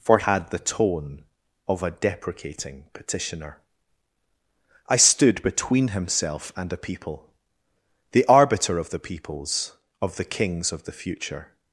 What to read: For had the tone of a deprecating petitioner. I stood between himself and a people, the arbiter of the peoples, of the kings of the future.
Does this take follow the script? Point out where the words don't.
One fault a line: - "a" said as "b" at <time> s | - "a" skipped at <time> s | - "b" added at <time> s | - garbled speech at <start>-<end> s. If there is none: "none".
none